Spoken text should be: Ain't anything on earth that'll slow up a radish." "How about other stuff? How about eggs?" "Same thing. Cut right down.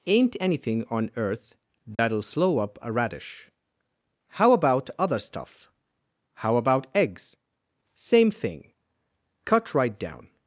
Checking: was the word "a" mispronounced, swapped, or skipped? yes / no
no